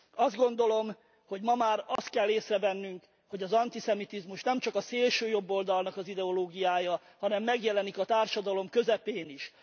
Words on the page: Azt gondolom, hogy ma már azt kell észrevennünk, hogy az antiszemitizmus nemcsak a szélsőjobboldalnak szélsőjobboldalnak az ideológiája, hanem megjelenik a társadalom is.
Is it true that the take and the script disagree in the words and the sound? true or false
true